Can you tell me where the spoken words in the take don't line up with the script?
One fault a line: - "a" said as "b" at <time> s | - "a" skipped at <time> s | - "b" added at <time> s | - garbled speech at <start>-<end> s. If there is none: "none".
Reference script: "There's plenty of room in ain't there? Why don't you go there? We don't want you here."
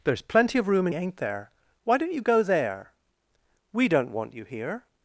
none